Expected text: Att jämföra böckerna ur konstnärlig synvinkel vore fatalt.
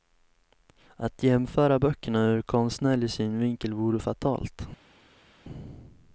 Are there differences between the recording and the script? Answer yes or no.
no